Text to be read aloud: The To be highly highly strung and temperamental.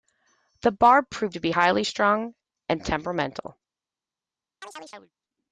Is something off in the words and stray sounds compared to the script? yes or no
yes